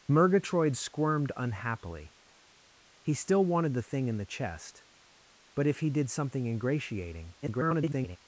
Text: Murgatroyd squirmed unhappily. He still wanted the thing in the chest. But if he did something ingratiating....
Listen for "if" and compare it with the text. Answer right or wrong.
right